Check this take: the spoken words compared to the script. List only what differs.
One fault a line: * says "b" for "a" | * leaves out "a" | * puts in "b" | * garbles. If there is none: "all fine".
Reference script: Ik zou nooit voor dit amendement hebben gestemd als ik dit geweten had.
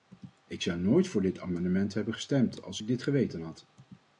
all fine